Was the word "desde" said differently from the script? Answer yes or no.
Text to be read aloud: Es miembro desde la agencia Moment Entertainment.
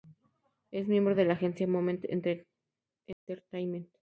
yes